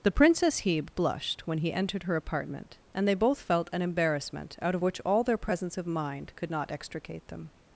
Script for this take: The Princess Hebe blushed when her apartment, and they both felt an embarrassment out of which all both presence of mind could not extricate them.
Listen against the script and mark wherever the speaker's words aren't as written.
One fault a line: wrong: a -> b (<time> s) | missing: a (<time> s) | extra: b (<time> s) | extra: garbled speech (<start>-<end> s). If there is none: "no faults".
extra: he entered (1.6 s)
wrong: both -> their (5.2 s)